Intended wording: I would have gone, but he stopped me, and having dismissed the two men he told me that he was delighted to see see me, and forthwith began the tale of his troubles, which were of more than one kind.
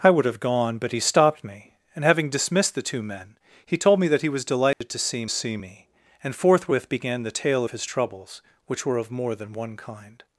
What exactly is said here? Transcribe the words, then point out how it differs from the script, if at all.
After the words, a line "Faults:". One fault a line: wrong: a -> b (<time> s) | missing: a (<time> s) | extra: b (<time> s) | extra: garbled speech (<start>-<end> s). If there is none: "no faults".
I would have gone, but he stopped me, and having dismissed the two men he told me that he was delighted to see see me, and forthwith began the tale of his troubles, which were of more than one kind.
Faults:
no faults